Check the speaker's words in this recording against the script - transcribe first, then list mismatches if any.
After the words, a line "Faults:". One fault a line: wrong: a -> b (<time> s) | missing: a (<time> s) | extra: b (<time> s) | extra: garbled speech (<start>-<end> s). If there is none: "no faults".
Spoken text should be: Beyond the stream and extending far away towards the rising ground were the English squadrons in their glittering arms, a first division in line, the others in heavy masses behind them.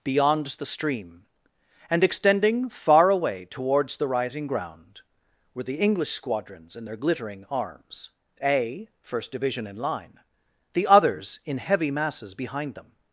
Beyond the stream and extending far away towards the rising ground were the English squadrons in their glittering arms, a first division in line, the others in heavy masses behind them.
Faults:
no faults